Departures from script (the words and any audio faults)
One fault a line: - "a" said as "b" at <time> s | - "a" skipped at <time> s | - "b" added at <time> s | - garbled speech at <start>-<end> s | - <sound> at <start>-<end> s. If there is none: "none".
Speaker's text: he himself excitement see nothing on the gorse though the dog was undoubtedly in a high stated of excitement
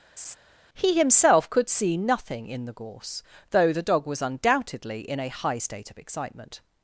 - laugh at 0.2-0.4 s
- "excitement" said as "could" at 1.5 s
- "on" said as "in" at 2.5 s
- "stated" said as "state" at 5.6 s